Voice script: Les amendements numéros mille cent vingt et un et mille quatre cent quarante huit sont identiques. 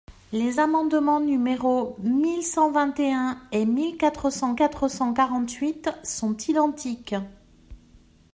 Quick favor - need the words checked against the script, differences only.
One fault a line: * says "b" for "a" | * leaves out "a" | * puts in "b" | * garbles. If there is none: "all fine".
* puts in "quatre cent"